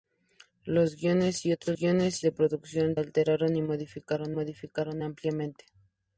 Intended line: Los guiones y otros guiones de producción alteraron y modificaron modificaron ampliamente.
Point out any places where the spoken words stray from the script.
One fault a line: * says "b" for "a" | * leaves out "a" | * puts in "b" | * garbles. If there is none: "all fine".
all fine